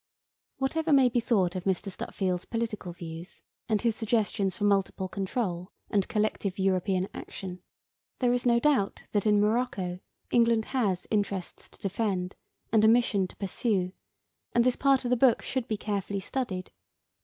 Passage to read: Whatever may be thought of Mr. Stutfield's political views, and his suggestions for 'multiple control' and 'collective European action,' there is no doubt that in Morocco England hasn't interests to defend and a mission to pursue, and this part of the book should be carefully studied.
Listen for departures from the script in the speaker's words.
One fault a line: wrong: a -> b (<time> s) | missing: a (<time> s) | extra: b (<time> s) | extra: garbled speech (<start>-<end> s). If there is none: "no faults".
wrong: hasn't -> has (10.7 s)